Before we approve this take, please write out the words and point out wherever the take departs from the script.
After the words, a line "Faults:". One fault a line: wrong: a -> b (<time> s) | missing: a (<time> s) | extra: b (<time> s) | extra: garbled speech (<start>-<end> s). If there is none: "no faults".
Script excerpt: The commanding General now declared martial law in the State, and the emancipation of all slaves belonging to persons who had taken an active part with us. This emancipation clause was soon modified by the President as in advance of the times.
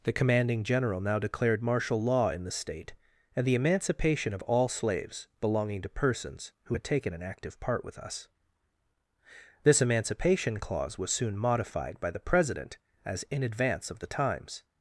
The commanding General now declared martial law in the State, and the emancipation of all slaves belonging to persons who had taken an active part with us. This emancipation clause was soon modified by the President as in advance of the times.
Faults:
no faults